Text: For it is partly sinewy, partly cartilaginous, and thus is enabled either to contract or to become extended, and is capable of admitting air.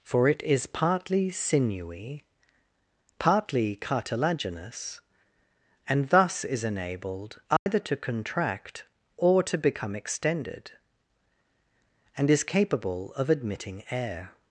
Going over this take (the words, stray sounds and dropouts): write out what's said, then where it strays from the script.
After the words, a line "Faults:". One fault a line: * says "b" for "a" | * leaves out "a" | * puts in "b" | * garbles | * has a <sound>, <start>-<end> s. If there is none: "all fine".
For it is partly sinewy, partly cartilaginous, and thus is enabled either to contract or to become extended, and is capable of admitting air.
Faults:
* has a dropout, 7.6-7.7 s